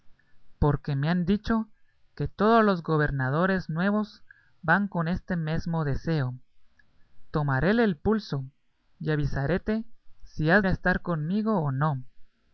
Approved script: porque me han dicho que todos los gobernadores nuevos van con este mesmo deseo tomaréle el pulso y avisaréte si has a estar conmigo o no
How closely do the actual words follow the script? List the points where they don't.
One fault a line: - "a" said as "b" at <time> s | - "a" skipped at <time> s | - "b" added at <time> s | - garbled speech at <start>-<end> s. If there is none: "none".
none